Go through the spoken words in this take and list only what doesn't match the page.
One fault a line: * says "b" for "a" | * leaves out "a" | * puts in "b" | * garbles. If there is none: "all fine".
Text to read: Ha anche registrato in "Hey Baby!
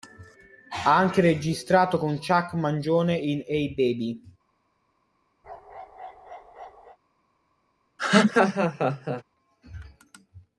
* puts in "con Chuck Mangione"